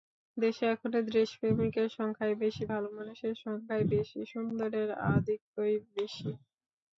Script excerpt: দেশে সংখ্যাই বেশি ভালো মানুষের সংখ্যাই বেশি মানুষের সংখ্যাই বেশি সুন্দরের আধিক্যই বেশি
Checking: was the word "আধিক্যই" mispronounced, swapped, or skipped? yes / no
no